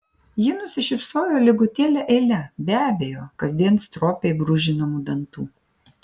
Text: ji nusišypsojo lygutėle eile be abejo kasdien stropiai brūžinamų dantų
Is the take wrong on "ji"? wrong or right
right